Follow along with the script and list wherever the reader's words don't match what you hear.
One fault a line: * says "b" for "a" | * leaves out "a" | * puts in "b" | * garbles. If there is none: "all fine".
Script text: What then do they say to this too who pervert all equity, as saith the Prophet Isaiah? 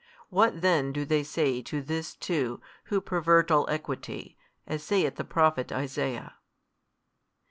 all fine